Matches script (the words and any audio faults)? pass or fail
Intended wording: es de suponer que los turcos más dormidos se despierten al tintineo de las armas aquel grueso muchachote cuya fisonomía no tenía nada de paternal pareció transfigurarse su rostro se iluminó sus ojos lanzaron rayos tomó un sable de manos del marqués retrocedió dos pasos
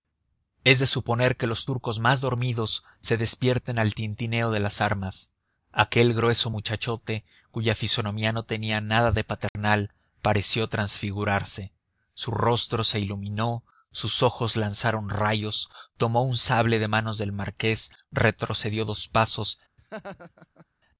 fail